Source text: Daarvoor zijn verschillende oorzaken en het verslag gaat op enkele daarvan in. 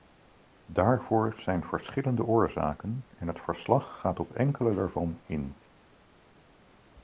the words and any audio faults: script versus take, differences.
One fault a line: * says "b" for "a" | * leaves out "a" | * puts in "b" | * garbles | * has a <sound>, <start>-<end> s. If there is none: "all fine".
all fine